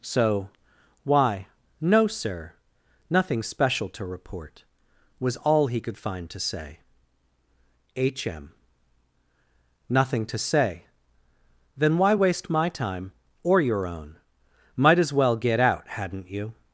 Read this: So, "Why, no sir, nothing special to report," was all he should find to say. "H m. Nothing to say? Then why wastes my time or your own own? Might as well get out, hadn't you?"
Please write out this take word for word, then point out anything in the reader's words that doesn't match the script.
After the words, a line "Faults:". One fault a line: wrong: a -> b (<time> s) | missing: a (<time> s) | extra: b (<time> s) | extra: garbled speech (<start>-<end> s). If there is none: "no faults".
So, "Why, no sir, nothing special to report," was all he could find to say. "H m. Nothing to say? Then why waste my time or your own? Might as well get out, hadn't you?"
Faults:
wrong: should -> could (5.8 s)
wrong: wastes -> waste (12.1 s)
missing: own (14.2 s)